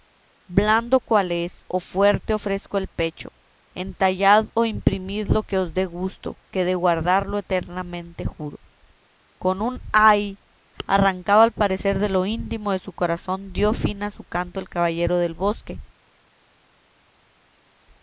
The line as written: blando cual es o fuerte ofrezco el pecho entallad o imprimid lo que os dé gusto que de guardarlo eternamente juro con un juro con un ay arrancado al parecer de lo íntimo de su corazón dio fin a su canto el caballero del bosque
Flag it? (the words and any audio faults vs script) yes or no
yes